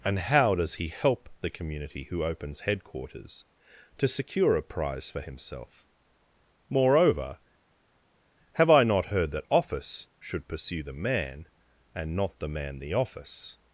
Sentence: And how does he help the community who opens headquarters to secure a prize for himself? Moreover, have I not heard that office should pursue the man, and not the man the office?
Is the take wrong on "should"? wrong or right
right